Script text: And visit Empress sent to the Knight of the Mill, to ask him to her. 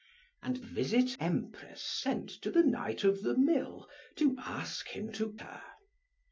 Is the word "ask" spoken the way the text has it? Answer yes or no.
yes